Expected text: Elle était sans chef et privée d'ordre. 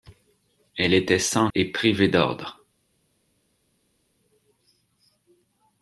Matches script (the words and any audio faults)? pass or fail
fail